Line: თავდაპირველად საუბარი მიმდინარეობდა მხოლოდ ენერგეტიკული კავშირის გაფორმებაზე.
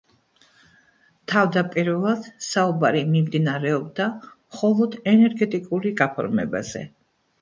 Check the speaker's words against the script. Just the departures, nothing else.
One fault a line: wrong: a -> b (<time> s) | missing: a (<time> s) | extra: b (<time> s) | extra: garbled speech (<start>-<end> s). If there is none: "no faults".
missing: კავშირის (6.0 s)